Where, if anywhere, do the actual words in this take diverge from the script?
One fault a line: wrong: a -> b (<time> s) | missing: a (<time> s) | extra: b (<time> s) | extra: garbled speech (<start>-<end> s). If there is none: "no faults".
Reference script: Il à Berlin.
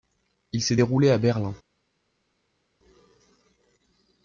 extra: s'est déroulé (0.6 s)